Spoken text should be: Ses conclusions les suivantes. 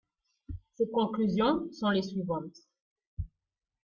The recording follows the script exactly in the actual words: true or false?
false